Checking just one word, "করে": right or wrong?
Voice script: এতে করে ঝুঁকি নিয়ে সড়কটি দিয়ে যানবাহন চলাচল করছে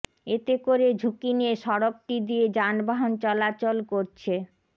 right